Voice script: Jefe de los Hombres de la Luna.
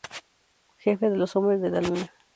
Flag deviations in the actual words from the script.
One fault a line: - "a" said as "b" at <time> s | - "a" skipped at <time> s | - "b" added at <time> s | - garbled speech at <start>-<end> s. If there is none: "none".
none